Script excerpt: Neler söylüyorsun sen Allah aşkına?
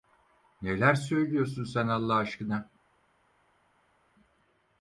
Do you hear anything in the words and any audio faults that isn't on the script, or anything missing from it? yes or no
no